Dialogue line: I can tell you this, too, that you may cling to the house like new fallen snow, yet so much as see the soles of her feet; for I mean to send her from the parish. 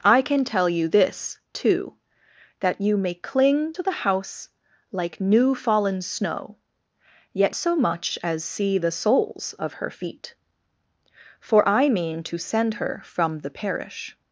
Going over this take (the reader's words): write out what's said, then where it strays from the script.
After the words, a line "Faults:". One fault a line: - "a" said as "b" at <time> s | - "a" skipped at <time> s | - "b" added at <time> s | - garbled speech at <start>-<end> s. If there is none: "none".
I can tell you this, too, that you may cling to the house like new fallen snow, yet so much as see the soles of her feet; for I mean to send her from the parish.
Faults:
none